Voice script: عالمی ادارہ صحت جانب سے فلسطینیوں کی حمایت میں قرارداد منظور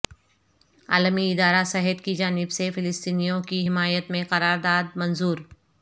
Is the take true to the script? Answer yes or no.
no